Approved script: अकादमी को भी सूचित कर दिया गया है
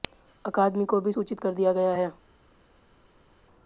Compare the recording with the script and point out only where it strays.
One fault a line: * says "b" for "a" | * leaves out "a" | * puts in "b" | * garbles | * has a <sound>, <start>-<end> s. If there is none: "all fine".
all fine